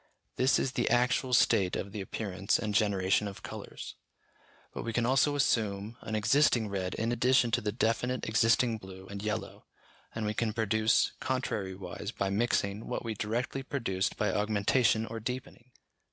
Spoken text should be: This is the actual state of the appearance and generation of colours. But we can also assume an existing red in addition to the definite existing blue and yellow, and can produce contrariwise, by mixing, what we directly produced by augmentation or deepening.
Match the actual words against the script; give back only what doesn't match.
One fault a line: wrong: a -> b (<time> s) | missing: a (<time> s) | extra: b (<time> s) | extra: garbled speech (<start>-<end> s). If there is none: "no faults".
extra: we (10.2 s)